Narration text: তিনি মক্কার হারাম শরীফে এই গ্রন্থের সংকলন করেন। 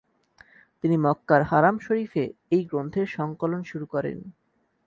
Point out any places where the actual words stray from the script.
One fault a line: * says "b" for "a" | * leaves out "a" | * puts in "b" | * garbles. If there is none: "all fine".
* puts in "শুরু"